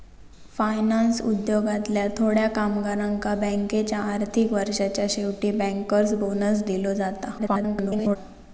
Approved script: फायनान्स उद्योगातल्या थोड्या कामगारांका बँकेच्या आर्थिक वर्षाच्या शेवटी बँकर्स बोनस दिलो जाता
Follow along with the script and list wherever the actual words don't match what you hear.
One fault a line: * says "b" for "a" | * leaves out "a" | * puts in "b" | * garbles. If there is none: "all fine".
* garbles